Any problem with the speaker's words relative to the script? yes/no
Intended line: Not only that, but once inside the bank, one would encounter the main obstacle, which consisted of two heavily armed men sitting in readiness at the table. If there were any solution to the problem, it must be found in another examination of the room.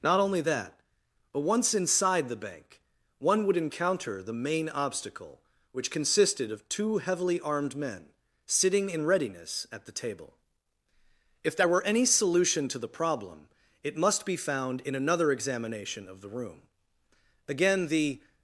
yes